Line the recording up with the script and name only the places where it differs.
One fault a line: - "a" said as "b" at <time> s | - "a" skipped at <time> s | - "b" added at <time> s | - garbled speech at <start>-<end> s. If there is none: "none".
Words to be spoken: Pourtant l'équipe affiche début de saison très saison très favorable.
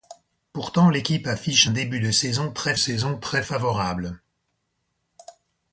none